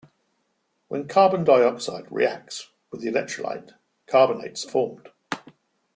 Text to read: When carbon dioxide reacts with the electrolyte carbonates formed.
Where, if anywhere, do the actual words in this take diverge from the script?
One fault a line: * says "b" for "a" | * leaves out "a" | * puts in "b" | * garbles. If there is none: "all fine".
all fine